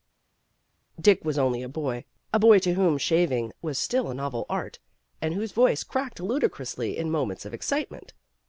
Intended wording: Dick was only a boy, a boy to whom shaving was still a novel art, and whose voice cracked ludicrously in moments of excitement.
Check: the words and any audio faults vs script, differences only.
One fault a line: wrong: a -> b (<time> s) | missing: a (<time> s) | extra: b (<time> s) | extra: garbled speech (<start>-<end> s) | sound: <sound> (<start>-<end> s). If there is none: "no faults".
no faults